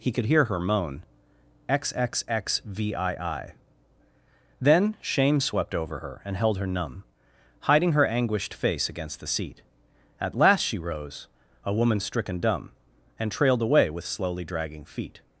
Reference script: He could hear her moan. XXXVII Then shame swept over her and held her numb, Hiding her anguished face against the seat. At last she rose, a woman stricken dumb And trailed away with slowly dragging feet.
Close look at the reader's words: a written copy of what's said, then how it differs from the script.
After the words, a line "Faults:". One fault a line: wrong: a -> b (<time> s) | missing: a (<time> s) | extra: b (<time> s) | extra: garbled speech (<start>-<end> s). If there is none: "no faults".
He could hear her moan. XXXVII Then shame swept over her and held her numb, Hiding her anguished face against the seat. At last she rose, a woman stricken dumb And trailed away with slowly dragging feet.
Faults:
no faults